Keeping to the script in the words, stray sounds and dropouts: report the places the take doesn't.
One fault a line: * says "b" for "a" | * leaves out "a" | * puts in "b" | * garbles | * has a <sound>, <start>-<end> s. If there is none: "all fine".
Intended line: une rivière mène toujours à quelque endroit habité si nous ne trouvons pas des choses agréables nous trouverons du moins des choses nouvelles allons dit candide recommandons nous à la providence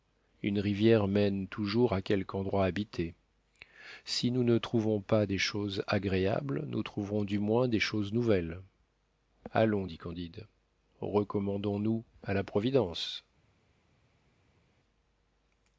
all fine